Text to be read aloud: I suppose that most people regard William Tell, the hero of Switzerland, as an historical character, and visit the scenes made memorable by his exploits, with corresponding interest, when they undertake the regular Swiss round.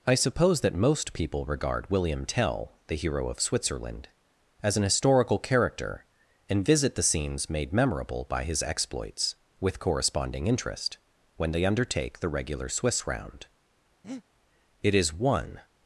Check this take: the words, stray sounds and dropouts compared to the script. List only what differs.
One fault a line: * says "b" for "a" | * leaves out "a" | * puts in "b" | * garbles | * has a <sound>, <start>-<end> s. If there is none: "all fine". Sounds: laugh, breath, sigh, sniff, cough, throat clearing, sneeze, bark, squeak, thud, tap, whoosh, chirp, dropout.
* has a breath, 14.0-14.2 s
* puts in "It is one"